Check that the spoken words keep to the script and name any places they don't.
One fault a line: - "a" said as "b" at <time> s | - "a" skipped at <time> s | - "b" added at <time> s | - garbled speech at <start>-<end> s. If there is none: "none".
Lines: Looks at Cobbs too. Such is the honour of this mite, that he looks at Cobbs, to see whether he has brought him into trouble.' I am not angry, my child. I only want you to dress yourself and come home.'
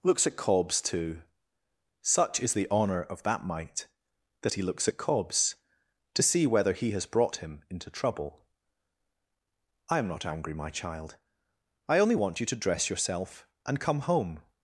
- "this" said as "that" at 3.2 s